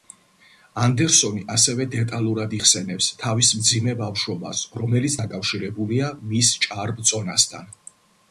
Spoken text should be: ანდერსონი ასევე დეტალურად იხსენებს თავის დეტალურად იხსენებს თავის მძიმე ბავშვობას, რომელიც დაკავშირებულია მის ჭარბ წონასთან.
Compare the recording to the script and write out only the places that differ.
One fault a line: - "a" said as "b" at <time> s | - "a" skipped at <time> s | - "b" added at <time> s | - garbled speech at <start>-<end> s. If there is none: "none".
- "დეტალურად იხსენებს თავის" skipped at 3.5 s